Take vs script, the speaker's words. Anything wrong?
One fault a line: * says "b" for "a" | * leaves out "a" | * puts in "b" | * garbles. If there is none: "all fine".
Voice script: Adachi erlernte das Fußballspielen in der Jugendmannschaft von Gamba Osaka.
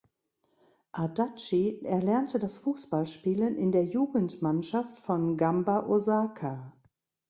all fine